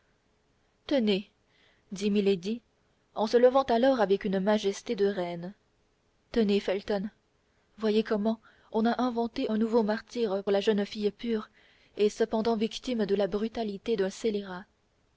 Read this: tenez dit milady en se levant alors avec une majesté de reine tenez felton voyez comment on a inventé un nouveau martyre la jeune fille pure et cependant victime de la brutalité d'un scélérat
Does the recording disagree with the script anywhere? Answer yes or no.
no